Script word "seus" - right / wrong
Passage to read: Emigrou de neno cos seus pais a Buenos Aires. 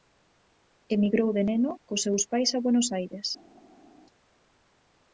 right